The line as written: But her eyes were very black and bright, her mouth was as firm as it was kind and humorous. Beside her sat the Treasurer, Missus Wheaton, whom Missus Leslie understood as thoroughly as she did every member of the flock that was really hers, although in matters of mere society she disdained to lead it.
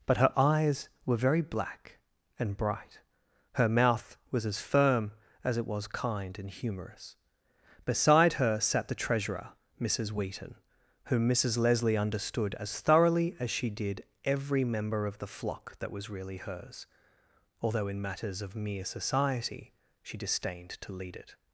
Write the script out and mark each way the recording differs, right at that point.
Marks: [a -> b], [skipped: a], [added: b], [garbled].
But her eyes were very black and bright, her mouth was as firm as it was kind and humorous. Beside her sat the Treasurer, Missus Wheaton, whom Missus Leslie understood as thoroughly as she did every member of the flock that was really hers, although in matters of mere society she disdained to lead it.